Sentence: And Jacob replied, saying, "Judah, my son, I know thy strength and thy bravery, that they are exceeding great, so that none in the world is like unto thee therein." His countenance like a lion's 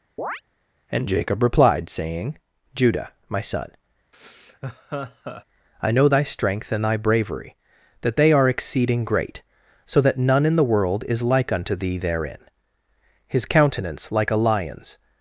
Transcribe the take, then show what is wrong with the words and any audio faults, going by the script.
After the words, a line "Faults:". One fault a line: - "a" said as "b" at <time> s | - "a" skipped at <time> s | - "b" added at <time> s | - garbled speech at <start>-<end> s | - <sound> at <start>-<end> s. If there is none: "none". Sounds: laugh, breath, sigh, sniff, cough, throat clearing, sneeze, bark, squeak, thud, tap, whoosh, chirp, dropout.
And Jacob replied, saying, "Judah, my son, I know thy strength and thy bravery, that they are exceeding great, so that none in the world is like unto thee therein." His countenance like a lion's
Faults:
- chirp at 0.2-0.4 s
- laugh at 4.1-5.4 s